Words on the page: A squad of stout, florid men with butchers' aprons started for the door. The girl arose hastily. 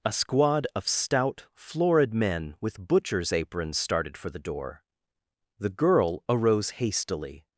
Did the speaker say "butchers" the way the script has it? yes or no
yes